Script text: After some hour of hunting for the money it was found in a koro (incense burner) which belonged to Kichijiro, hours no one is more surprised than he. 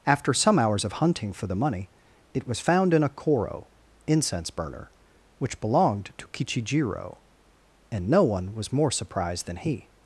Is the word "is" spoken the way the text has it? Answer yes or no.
no